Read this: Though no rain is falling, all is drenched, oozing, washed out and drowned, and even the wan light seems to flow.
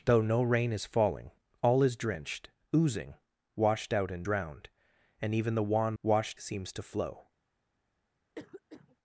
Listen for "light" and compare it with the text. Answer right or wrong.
wrong